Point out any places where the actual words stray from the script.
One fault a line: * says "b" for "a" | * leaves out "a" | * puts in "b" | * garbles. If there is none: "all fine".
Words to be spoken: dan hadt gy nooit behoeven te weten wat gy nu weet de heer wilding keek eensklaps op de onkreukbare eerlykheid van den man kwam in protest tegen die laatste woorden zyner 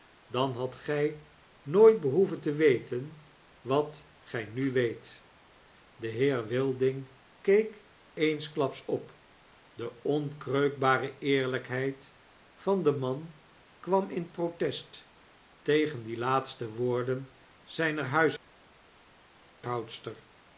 all fine